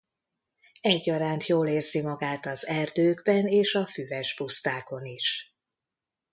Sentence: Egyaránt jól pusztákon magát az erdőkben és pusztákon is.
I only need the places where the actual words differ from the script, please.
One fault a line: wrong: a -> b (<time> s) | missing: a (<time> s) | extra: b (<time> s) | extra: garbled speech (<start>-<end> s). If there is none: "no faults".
wrong: pusztákon -> érzi (1.7 s)
extra: a füves (3.8 s)